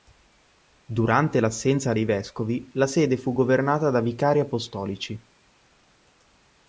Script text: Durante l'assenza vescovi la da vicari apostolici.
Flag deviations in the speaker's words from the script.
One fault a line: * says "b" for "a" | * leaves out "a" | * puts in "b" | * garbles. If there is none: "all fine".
* puts in "dei"
* puts in "sede fu governata"